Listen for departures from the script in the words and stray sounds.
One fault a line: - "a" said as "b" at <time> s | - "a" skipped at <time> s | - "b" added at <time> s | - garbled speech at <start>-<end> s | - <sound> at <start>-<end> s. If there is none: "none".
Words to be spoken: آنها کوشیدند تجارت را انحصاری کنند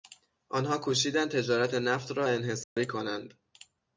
- "نفت" added at 1.7 s
- dropout at 2.6-2.8 s